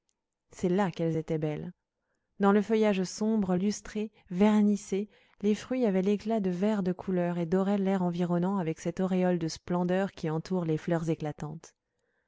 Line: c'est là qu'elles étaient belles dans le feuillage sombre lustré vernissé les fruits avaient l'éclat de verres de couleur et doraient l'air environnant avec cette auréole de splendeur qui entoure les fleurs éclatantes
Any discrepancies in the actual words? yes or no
no